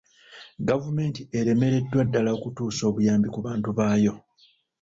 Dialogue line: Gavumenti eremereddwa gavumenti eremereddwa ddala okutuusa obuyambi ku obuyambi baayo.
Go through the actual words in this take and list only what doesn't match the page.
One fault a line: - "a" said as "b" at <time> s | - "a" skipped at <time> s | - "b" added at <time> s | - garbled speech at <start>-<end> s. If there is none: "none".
- "gavumenti eremereddwa" skipped at 2.0 s
- "obuyambi" said as "bantu" at 3.5 s